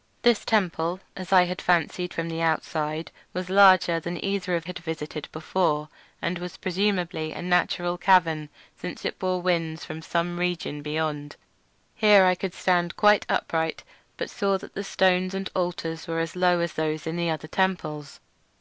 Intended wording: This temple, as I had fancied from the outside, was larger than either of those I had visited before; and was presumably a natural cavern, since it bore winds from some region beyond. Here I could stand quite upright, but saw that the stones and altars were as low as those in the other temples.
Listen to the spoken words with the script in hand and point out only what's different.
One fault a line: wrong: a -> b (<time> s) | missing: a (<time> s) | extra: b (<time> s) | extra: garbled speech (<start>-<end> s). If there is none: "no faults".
missing: those I (4.7 s)